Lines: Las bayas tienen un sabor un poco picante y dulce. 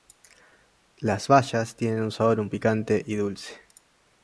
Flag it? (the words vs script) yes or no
yes